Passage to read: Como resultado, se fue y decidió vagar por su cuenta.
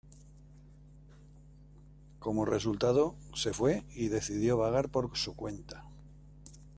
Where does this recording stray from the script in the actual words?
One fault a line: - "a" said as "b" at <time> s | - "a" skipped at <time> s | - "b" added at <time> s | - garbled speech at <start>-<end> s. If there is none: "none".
none